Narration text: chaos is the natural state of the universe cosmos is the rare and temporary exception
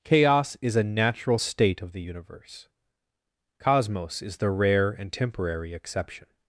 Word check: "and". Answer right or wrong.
right